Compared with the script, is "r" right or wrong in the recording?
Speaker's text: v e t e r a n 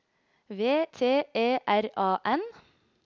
right